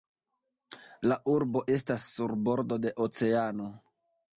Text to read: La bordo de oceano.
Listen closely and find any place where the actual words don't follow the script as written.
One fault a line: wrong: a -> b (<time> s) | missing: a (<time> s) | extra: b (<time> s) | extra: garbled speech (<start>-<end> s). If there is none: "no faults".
extra: urbo estas sur (1.4 s)